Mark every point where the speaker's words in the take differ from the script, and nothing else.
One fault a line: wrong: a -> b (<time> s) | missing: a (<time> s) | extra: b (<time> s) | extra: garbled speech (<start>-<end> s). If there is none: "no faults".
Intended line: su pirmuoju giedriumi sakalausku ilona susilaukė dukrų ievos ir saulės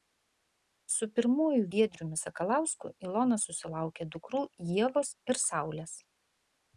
no faults